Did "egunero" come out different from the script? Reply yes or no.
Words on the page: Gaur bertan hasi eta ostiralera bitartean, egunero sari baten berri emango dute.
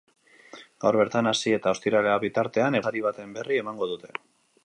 yes